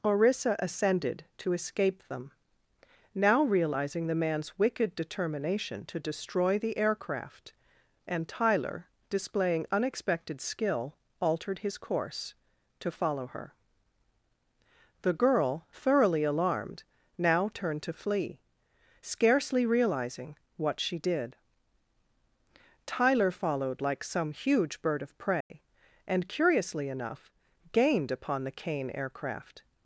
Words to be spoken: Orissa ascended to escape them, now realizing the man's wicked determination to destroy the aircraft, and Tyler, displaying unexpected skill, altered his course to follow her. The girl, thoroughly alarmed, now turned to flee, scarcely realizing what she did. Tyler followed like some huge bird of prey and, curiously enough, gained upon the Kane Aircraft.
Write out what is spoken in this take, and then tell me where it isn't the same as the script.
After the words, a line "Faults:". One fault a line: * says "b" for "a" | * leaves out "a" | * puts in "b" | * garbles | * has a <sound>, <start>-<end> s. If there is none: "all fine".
Orissa ascended to escape them, now realizing the man's wicked determination to destroy the aircraft, and Tyler, displaying unexpected skill, altered his course to follow her. The girl, thoroughly alarmed, now turned to flee, scarcely realizing what she did. Tyler followed like some huge bird of prey and, curiously enough, gained upon the Kane Aircraft.
Faults:
* has a dropout, 25.4-25.5 s